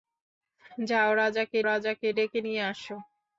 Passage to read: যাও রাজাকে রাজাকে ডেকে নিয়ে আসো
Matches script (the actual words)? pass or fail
pass